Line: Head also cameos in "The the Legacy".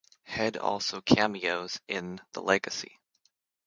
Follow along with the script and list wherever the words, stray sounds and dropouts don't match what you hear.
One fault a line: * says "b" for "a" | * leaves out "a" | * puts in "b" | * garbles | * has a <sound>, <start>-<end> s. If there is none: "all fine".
* leaves out "the"